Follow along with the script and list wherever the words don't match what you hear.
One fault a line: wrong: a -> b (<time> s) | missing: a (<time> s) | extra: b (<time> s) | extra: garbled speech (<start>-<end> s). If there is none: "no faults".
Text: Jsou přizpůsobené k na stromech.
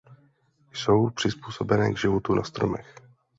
extra: životu (2.0 s)